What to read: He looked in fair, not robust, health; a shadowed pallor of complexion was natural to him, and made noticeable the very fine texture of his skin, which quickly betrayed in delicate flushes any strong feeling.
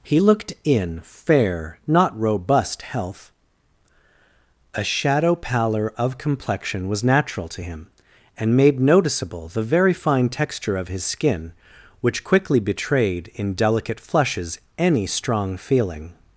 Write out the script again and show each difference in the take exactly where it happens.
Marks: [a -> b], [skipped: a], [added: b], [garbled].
He looked in fair, not robust, health; a [shadowed -> shadow] pallor of complexion was natural to him, and made noticeable the very fine texture of his skin, which quickly betrayed in delicate flushes any strong feeling.